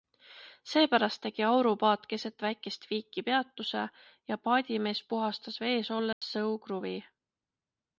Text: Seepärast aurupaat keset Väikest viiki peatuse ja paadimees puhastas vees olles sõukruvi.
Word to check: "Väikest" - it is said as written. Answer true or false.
true